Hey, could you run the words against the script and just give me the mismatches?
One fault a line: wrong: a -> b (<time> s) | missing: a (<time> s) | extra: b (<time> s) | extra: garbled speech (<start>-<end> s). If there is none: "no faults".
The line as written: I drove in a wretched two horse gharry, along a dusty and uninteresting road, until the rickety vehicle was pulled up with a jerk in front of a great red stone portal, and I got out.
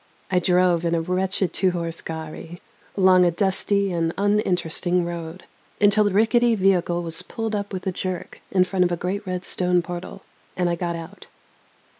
no faults